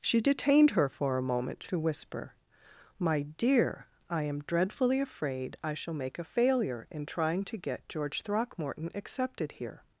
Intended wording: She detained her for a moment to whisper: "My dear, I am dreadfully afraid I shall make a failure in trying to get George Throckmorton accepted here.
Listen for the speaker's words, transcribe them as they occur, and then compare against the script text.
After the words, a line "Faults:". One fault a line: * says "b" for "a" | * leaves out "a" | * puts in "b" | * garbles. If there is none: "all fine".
She detained her for a moment to whisper: "My dear, I am dreadfully afraid I shall make a failure in trying to get George Throckmorton accepted here.
Faults:
all fine